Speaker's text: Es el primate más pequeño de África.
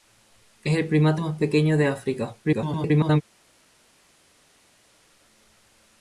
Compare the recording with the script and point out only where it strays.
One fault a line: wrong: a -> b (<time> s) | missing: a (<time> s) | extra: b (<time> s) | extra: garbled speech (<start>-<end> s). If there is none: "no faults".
extra: garbled speech (2.4-3.2 s)